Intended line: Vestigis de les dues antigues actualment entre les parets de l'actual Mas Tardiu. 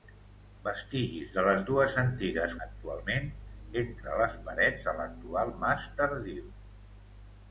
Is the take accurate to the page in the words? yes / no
yes